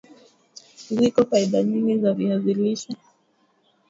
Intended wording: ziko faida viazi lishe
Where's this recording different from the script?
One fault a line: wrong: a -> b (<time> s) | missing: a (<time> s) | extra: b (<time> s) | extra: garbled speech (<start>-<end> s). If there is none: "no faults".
extra: nyingi za (1.6 s)